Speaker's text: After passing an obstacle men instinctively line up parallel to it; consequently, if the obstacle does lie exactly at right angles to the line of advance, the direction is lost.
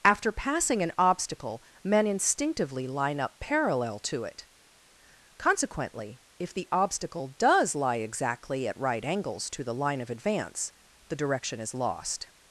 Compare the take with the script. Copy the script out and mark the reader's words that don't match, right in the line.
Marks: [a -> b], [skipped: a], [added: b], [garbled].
After passing an obstacle men instinctively line up parallel to it; consequently, if the obstacle does lie exactly at right angles to the line of advance, the direction is lost.